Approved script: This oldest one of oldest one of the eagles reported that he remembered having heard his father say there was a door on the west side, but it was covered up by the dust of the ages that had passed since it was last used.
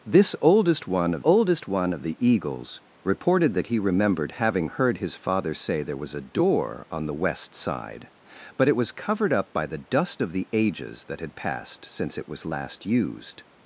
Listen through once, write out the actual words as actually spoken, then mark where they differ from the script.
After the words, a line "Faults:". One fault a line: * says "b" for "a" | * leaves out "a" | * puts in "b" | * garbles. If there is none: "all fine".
This oldest one of oldest one of the eagles reported that he remembered having heard his father say there was a door on the west side, but it was covered up by the dust of the ages that had passed since it was last used.
Faults:
all fine